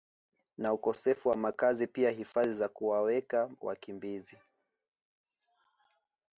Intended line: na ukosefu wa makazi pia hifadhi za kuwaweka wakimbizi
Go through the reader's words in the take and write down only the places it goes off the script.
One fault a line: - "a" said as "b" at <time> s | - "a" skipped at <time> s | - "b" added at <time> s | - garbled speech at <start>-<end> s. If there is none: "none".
none